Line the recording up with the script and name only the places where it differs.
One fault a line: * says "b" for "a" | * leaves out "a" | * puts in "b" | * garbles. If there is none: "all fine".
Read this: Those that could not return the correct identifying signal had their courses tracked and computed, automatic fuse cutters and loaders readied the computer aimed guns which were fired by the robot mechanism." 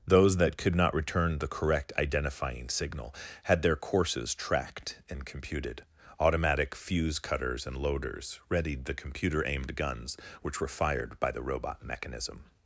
all fine